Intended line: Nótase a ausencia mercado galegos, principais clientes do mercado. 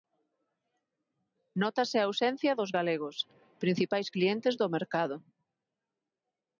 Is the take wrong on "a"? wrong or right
right